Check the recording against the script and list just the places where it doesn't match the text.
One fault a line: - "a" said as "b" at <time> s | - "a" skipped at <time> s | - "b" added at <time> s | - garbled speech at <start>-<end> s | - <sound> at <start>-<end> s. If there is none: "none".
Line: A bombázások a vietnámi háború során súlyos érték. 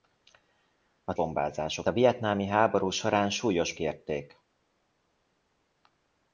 none